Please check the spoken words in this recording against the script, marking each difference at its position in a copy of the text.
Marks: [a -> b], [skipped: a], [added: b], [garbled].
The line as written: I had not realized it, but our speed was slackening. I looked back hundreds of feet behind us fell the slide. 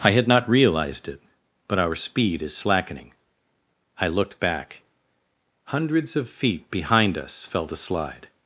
I had not realized it, but our speed [was -> is] slackening. I looked back hundreds of feet behind us fell the slide.